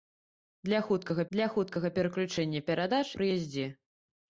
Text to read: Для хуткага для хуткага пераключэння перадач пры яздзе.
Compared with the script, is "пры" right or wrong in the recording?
right